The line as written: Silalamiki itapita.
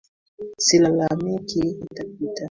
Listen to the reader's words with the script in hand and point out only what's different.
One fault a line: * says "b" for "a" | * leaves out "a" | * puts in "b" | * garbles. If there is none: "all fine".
all fine